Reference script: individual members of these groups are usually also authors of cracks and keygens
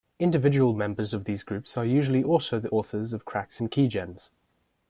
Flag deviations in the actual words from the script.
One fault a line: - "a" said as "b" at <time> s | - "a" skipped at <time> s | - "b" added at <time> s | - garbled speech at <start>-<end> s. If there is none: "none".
- "the" added at 2.6 s